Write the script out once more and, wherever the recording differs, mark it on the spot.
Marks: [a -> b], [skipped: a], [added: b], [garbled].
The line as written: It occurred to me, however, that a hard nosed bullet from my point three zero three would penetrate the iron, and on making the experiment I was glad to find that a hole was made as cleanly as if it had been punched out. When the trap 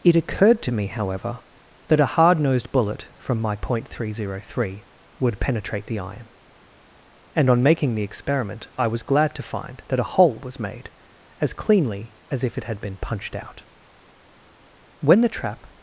It occurred to me, however, that a hard nosed bullet from my point three zero three would penetrate the iron, and on making the experiment I was glad to find that a hole was made as cleanly as if it had been punched out. When the trap